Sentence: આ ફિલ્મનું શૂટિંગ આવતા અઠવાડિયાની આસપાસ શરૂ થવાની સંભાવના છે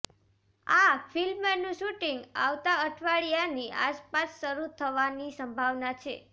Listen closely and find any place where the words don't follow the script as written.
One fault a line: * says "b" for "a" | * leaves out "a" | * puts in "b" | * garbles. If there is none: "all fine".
all fine